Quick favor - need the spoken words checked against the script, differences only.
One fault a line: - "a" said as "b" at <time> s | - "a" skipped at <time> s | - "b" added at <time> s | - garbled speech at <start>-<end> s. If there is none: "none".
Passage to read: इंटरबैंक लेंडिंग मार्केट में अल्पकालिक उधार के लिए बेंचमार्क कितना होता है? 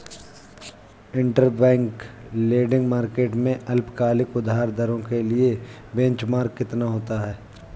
- "दरों" added at 4.7 s